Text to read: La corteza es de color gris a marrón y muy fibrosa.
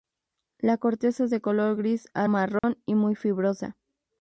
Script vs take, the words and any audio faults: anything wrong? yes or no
yes